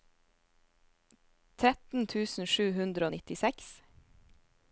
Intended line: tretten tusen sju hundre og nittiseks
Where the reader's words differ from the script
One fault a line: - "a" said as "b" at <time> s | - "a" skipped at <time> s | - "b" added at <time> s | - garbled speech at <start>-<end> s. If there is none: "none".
none